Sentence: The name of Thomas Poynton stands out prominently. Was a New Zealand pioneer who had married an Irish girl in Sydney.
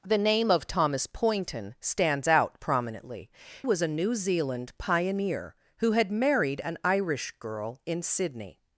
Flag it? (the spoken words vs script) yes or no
no